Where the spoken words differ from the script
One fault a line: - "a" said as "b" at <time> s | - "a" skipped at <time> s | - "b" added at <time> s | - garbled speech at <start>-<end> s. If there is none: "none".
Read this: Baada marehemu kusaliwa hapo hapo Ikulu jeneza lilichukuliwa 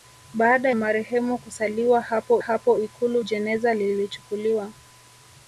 none